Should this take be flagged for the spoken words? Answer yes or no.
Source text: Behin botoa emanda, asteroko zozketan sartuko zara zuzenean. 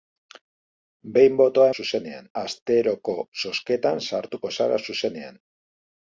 yes